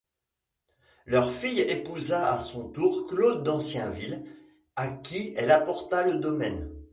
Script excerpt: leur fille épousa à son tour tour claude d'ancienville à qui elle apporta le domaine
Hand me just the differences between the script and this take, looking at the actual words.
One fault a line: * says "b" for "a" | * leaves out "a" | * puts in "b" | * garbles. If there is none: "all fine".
* leaves out "tour"